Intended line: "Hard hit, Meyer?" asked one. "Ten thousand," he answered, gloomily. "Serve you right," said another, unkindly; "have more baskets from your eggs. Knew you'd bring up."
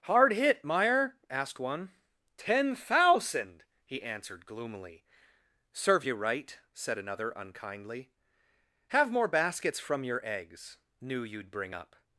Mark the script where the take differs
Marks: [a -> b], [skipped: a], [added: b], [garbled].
"Hard hit, Meyer?" asked one. "Ten thousand," he answered, gloomily. "Serve you right," said another, unkindly; "have more baskets from your eggs. Knew you'd bring up."